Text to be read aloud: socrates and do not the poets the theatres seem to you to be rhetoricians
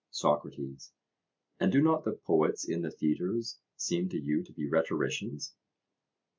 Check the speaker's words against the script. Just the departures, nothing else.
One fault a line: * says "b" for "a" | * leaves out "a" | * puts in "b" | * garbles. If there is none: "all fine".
* puts in "in"